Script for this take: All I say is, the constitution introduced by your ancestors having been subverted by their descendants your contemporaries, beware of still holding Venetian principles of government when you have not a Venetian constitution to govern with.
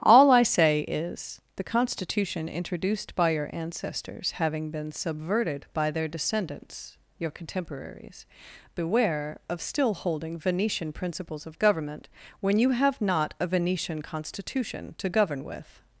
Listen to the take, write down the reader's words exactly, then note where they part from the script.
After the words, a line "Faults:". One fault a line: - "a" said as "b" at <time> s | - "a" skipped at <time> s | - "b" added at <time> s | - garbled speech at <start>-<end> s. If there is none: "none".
All I say is, the constitution introduced by your ancestors having been subverted by their descendants your contemporaries, beware of still holding Venetian principles of government when you have not a Venetian constitution to govern with.
Faults:
none